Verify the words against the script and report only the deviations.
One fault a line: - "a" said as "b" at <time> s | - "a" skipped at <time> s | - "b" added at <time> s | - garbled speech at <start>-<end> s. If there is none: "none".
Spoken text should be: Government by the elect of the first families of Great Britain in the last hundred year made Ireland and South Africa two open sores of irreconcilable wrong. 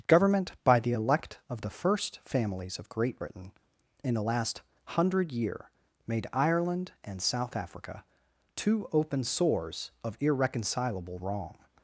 none